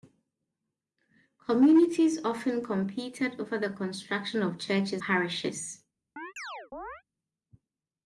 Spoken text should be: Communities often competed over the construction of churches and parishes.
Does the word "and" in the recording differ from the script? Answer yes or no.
yes